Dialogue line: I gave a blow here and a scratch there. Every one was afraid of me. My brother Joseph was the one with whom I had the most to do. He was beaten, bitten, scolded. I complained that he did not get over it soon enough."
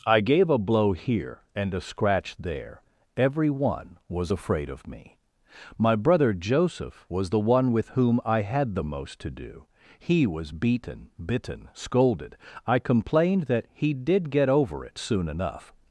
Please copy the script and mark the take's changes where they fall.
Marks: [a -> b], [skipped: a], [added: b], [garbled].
I gave a blow here and a scratch there. Every one was afraid of me. My brother Joseph was the one with whom I had the most to do. He was beaten, bitten, scolded. I complained that he did [skipped: not] get over it soon enough."